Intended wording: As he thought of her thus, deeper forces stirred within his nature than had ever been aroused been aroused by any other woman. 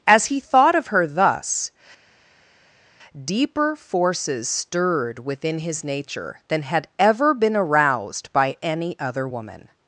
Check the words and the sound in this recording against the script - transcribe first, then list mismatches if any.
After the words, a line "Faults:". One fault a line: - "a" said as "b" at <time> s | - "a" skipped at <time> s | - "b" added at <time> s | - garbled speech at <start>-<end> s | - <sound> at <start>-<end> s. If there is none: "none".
As he thought of her thus, deeper forces stirred within his nature than had ever been aroused by any other woman.
Faults:
- "been aroused" skipped at 8.3 s